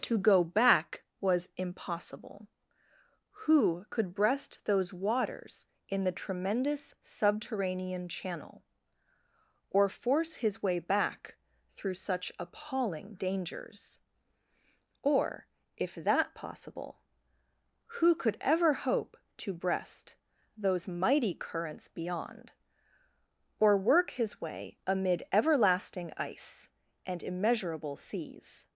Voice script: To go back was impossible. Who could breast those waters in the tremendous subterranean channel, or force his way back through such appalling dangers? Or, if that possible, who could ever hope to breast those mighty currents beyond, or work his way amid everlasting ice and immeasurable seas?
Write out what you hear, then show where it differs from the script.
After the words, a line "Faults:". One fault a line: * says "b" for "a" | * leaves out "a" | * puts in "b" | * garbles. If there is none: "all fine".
To go back was impossible. Who could breast those waters in the tremendous subterranean channel, or force his way back through such appalling dangers? Or, if that possible, who could ever hope to breast those mighty currents beyond, or work his way amid everlasting ice and immeasurable seas?
Faults:
all fine